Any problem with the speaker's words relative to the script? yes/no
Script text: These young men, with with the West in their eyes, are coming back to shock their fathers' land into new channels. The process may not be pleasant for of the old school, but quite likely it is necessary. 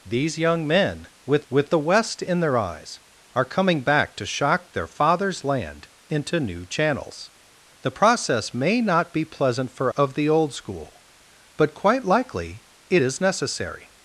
no